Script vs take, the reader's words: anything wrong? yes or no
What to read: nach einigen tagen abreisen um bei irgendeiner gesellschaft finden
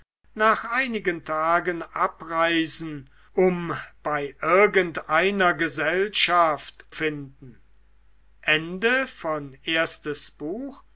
no